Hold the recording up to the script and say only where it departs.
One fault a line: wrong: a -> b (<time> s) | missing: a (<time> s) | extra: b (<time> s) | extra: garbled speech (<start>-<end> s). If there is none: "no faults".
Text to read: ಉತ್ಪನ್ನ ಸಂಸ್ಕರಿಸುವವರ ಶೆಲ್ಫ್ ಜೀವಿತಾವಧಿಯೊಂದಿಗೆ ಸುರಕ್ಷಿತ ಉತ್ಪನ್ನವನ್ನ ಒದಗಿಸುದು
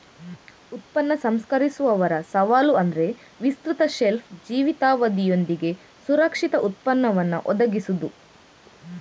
extra: ಸವಾಲು ಅಂದ್ರೆ ವಿಸ್ತೃತ (2.3 s)